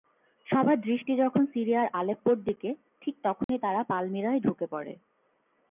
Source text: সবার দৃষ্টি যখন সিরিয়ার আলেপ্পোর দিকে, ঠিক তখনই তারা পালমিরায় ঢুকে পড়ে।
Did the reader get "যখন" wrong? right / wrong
right